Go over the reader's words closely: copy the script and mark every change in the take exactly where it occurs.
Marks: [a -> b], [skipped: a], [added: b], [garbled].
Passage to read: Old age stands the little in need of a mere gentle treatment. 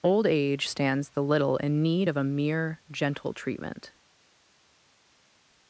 Old age stands the little in need of a mere gentle treatment.